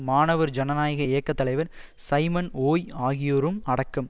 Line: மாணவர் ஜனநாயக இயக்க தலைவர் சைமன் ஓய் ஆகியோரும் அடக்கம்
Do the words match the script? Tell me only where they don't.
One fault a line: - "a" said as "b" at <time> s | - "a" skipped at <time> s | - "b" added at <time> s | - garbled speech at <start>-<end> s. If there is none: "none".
none